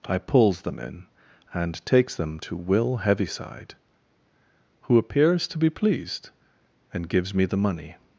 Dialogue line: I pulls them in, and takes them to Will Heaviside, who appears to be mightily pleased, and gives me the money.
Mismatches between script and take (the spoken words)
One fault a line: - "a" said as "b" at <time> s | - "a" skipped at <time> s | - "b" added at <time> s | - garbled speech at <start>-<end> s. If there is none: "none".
- "mightily" skipped at 5.7 s